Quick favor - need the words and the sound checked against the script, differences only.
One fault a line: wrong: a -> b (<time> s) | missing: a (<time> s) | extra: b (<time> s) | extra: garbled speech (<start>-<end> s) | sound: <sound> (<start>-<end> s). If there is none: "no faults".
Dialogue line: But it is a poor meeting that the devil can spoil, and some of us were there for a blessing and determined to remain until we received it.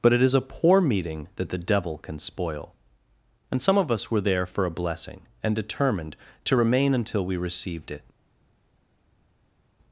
no faults